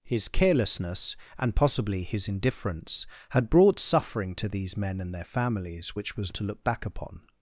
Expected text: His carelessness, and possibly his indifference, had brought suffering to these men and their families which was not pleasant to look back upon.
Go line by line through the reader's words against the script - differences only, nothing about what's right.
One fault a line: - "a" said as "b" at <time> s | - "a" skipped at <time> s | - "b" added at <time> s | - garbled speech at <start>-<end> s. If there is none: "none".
- "not pleasant" skipped at 6.3 s